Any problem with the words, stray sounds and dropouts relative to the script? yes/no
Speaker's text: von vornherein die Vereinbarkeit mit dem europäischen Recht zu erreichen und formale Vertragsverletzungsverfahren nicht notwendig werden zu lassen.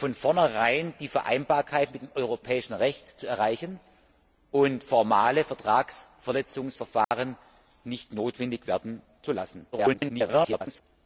yes